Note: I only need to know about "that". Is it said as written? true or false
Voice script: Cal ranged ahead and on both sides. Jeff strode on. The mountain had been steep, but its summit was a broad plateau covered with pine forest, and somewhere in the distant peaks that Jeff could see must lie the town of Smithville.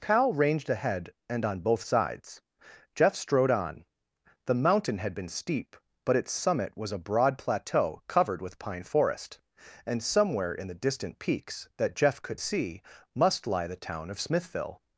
true